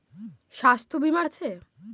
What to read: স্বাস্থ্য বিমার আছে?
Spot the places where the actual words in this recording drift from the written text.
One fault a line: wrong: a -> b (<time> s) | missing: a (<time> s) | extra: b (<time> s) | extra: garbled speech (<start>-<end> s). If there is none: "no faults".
no faults